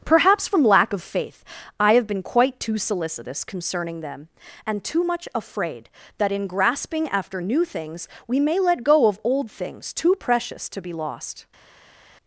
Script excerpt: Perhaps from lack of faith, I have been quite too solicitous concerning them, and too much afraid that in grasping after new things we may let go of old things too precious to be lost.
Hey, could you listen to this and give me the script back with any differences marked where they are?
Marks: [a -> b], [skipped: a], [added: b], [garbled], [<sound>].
Perhaps from lack of faith, I have been quite too solicitous concerning them, and too much afraid that in grasping after new things we may let go of old things too precious to be lost.